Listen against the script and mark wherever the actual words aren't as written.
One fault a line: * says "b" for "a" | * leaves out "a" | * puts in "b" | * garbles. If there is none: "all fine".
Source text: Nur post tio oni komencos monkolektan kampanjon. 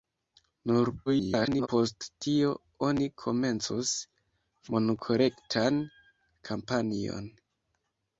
* garbles